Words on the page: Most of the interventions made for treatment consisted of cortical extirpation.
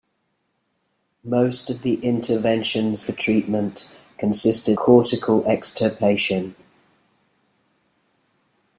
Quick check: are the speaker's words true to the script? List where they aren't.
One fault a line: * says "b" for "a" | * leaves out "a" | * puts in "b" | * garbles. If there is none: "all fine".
* leaves out "made"
* leaves out "of"